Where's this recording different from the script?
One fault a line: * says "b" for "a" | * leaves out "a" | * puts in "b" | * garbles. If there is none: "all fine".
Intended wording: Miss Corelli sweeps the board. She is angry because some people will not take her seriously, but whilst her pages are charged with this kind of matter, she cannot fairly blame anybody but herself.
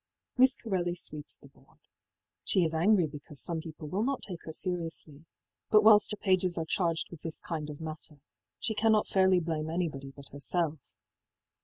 all fine